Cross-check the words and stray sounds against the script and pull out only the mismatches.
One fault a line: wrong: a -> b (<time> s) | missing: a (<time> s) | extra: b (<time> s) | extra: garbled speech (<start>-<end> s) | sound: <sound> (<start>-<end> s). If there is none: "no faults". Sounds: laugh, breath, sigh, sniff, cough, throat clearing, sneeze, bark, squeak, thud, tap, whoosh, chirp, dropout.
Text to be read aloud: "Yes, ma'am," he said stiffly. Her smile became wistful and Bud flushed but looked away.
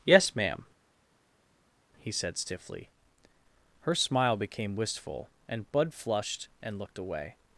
wrong: but -> and (6.6 s)